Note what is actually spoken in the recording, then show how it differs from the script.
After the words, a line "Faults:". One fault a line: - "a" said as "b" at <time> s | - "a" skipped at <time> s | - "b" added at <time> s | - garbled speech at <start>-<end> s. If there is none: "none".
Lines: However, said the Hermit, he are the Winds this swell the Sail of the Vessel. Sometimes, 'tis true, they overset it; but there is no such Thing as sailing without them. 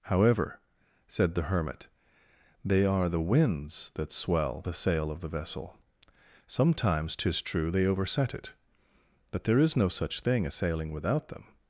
However, said the Hermit, they are the Winds that swell the Sail of the Vessel. Sometimes, 'tis true, they overset it; but there is no such Thing as sailing without them.
Faults:
- "he" said as "they" at 2.6 s
- "this" said as "that" at 3.9 s